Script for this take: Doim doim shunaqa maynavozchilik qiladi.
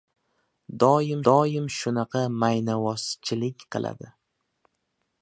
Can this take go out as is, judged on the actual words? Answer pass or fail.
pass